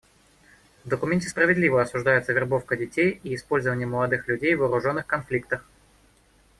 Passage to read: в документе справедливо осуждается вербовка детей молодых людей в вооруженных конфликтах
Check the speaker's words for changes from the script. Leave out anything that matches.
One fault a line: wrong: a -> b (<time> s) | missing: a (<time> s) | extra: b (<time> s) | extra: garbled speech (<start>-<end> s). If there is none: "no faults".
extra: и использование (3.2 s)